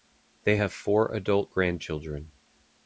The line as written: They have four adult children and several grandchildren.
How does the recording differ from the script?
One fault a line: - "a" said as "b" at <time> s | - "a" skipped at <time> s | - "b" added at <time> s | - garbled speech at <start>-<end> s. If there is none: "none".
- "children and several" skipped at 1.5 s